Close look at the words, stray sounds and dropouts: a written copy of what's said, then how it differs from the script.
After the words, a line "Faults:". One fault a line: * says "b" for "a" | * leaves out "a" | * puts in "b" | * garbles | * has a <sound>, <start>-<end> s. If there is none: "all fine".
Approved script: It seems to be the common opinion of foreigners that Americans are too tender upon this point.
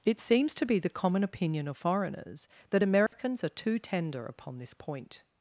It seems to be the common opinion of foreigners that Americans are too tender upon this point.
Faults:
* has a dropout, 3.1-3.1 s